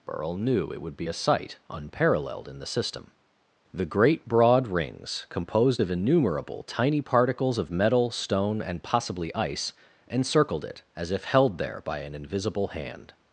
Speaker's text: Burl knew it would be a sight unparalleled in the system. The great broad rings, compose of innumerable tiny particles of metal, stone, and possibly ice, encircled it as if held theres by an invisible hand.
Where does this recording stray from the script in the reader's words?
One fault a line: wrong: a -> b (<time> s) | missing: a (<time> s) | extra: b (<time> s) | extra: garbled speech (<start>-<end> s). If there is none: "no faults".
wrong: compose -> composed (5.3 s)
wrong: theres -> there (11.6 s)